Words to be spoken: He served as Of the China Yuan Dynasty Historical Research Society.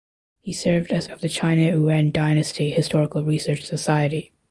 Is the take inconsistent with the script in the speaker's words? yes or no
no